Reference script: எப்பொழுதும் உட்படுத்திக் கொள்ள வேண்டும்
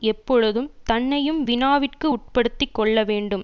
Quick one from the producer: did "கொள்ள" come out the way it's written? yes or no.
yes